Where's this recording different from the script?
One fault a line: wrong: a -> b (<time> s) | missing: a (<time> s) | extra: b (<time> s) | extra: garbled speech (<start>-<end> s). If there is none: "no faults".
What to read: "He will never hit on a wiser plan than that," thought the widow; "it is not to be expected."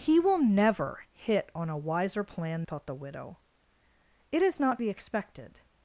missing: than that (2.6 s)
missing: to (4.8 s)